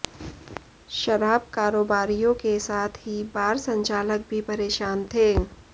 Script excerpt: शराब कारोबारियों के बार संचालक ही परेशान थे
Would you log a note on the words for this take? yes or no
yes